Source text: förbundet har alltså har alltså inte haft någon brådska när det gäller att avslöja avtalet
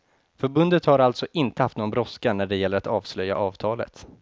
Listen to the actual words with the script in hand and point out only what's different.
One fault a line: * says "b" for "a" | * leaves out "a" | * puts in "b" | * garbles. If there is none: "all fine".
* leaves out "har alltså"